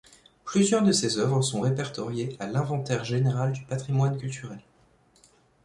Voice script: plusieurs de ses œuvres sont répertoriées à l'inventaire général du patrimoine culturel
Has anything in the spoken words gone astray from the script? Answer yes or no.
no